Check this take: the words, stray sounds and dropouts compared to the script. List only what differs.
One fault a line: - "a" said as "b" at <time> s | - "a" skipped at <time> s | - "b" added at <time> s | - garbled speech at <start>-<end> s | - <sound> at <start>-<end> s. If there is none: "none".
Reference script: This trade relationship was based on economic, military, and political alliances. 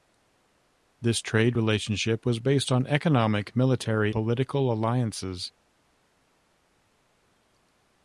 - "and" skipped at 4.1 s